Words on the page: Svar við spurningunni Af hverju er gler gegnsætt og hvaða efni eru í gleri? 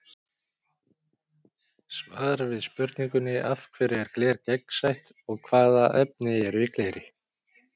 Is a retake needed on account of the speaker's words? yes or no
no